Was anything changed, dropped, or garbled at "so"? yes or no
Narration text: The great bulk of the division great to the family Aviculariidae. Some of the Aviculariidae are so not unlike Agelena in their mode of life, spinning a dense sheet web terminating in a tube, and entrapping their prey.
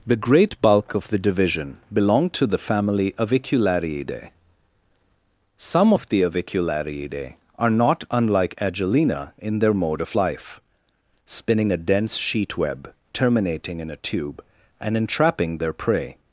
yes